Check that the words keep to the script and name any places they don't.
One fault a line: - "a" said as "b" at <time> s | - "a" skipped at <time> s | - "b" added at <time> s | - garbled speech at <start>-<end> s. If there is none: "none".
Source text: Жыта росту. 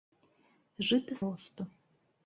none